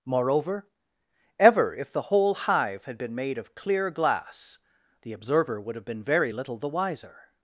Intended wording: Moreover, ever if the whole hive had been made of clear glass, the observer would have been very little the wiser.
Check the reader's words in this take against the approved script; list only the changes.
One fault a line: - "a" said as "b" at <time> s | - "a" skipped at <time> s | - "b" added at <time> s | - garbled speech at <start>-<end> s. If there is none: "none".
none